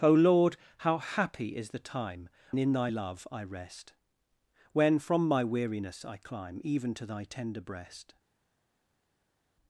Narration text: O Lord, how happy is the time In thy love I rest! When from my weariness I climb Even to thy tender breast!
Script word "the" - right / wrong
right